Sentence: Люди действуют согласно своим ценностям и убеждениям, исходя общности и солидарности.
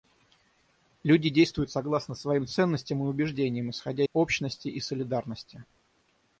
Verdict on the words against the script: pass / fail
pass